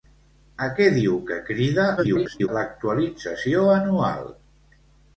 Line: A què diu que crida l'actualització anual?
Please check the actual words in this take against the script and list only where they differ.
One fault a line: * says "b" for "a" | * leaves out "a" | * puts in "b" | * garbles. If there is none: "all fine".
* garbles